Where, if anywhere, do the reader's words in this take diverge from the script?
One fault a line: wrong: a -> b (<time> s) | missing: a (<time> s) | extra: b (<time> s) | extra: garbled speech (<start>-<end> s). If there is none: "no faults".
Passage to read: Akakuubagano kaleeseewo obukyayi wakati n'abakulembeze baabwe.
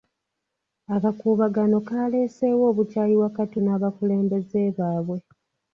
no faults